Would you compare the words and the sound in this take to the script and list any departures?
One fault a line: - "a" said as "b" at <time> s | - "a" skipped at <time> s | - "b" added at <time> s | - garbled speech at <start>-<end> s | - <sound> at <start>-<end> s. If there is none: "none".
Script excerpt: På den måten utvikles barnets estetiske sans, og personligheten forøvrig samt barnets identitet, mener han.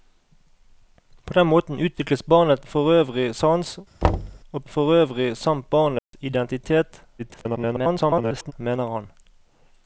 - "estetiske" said as "forøvrig" at 2.6 s
- thud at 4.0-4.4 s
- "personligheten" skipped at 4.6 s
- dropout at 6.0-6.1 s
- garbled speech at 7.2-8.5 s